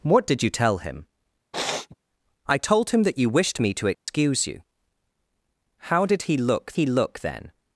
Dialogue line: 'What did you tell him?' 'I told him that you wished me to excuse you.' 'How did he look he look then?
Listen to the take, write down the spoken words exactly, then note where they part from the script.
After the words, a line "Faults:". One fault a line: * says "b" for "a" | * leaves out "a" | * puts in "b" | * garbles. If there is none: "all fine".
'What did you tell him?' 'I told him that you wished me to excuse you.' 'How did he look he look then?
Faults:
all fine